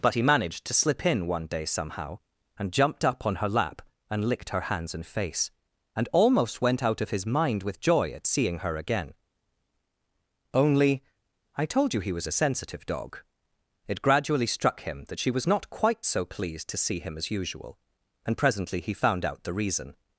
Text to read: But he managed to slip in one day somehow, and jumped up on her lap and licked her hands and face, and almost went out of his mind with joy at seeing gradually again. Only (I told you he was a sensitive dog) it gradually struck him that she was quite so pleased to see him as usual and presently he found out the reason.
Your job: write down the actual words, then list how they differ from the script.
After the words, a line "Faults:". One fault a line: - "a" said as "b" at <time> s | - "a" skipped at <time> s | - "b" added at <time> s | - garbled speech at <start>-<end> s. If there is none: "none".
But he managed to slip in one day somehow, and jumped up on her lap and licked her hands and face, and almost went out of his mind with joy at seeing her again. Only (I told you he was a sensitive dog) it gradually struck him that she was not quite so pleased to see him as usual and presently he found out the reason.
Faults:
- "gradually" said as "her" at 8.6 s
- "not" added at 15.5 s